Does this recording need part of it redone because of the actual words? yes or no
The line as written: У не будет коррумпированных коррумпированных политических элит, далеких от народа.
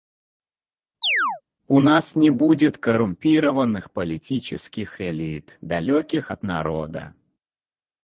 yes